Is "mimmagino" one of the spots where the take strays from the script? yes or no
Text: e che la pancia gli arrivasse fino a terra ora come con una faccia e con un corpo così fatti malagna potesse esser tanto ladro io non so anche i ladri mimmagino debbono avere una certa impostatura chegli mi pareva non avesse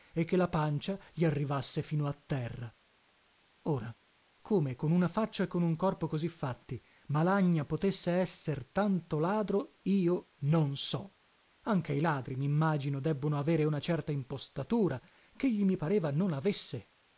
no